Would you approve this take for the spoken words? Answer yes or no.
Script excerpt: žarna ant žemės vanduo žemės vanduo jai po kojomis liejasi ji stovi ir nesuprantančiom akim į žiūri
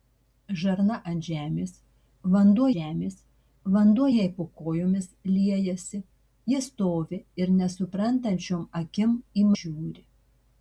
yes